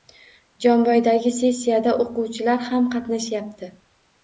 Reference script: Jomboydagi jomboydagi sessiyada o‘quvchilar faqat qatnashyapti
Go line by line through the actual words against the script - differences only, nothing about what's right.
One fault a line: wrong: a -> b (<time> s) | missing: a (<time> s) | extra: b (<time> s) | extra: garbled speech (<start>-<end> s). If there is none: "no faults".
missing: jomboydagi (1.3 s)
wrong: faqat -> ham (2.7 s)